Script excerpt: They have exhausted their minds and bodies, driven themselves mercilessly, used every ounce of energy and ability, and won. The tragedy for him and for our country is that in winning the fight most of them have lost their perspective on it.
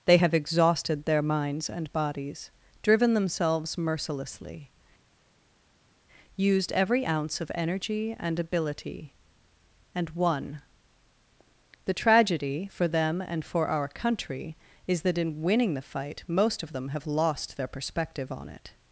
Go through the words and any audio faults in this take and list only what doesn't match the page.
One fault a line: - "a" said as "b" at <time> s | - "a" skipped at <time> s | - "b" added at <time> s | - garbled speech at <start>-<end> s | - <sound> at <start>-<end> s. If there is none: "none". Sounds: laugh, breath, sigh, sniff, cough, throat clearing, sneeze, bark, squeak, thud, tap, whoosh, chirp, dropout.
- "him" said as "them" at 12.9 s